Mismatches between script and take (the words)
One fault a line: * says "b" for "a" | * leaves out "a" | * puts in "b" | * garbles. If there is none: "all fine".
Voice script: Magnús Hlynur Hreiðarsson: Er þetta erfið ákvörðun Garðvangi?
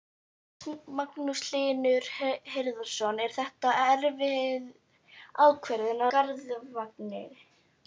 all fine